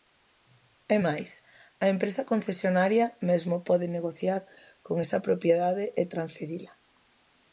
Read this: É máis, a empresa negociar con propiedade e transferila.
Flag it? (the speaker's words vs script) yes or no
yes